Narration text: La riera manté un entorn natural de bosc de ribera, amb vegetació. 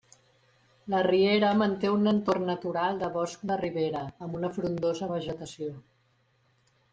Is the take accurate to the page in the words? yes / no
no